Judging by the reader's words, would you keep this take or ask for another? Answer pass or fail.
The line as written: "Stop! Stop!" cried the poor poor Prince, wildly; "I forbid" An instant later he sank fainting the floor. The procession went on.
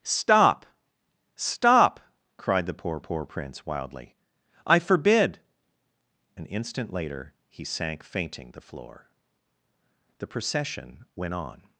pass